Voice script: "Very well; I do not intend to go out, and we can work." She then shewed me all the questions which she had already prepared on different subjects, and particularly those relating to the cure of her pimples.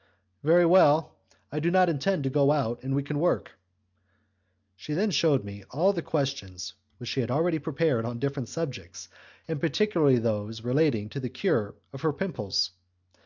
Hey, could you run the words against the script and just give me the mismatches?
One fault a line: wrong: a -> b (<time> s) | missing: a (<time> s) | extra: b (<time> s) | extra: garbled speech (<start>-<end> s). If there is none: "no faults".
no faults